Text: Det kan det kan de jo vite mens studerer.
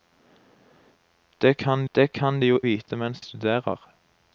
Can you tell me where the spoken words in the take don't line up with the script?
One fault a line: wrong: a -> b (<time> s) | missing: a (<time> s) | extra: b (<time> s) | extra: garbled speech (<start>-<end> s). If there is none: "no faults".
no faults